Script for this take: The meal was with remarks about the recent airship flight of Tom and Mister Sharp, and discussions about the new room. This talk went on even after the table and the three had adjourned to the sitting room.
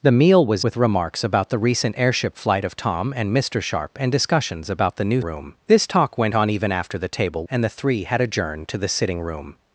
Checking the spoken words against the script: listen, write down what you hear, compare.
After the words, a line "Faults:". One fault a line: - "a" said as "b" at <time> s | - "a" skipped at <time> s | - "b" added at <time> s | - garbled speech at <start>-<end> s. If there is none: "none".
The meal was with remarks about the recent airship flight of Tom and Mister Sharp, and discussions about the new room. This talk went on even after the table and the three had adjourned to the sitting room.
Faults:
none